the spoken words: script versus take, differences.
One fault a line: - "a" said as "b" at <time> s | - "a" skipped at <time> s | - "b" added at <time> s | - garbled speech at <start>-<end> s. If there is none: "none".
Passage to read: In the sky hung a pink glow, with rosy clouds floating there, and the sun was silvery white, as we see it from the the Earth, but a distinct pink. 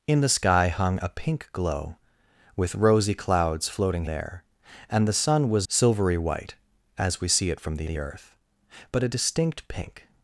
none